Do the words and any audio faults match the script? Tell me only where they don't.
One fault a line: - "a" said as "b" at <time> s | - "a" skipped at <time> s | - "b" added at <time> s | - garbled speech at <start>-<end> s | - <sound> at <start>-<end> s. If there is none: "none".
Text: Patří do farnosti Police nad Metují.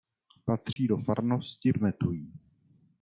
- dropout at 0.7-0.8 s
- "Police nad" skipped at 1.7 s